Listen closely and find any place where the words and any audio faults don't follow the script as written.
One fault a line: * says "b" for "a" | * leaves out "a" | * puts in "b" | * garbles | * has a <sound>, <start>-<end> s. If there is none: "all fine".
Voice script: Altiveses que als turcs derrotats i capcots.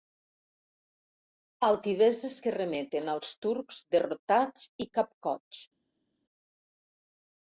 * puts in "remeten"